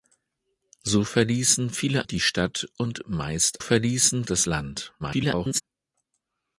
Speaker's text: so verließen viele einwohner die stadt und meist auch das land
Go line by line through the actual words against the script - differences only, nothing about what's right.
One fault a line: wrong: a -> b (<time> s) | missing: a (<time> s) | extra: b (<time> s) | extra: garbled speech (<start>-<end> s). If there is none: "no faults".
missing: einwohner (2.1 s)
wrong: auch -> verließen (3.6 s)
extra: garbled speech (5.0-5.6 s)